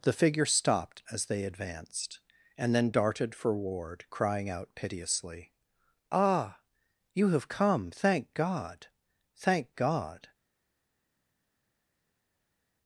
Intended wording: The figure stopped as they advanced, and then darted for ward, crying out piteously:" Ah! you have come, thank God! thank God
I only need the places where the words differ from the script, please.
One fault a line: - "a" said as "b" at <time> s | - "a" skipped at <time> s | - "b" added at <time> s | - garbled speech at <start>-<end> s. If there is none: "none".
none